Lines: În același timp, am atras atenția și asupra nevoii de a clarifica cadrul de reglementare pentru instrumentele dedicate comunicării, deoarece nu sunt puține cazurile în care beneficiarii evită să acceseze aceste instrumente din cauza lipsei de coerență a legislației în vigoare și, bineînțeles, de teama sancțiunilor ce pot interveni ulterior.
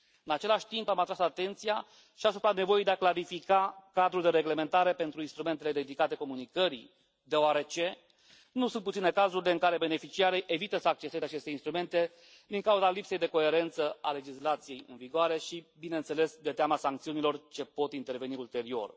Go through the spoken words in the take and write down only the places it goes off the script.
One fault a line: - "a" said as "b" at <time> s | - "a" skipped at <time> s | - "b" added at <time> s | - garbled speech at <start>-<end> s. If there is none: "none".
none